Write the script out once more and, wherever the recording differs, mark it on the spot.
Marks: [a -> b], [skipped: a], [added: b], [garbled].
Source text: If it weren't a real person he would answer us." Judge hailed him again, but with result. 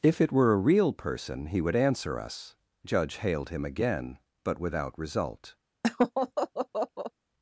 If it [weren't -> were] a real person he would answer us." Judge hailed him again, but [with -> without] result.